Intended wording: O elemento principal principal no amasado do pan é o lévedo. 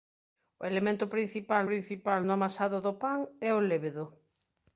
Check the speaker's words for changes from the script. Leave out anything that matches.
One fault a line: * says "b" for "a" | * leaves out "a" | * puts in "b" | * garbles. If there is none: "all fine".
all fine